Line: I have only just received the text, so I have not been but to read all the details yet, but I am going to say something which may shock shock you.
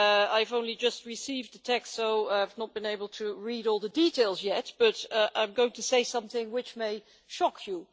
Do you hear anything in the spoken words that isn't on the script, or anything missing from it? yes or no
yes